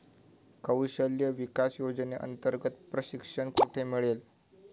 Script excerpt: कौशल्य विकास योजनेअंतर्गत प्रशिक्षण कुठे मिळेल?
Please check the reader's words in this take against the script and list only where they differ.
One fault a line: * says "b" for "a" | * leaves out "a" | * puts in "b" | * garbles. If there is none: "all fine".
all fine